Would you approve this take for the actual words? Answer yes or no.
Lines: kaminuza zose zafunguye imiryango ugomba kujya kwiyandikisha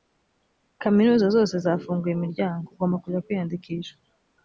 yes